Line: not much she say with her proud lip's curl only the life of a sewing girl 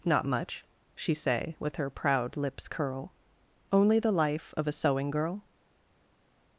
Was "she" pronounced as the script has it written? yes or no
yes